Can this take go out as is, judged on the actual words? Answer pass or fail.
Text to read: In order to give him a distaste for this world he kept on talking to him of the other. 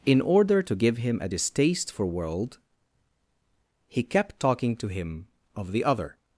fail